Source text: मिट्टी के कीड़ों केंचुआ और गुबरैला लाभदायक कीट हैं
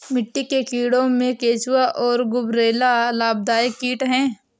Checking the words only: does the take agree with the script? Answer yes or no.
no